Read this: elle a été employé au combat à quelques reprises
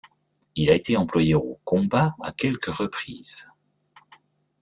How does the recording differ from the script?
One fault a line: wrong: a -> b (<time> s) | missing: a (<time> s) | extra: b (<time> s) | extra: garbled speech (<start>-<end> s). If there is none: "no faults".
wrong: elle -> il (0.6 s)